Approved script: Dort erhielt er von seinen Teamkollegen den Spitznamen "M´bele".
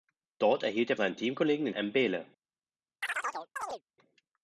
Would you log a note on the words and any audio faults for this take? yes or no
yes